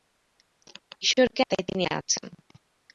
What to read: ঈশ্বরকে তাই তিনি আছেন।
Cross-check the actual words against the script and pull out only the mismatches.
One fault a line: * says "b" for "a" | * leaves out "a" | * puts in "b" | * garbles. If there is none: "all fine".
all fine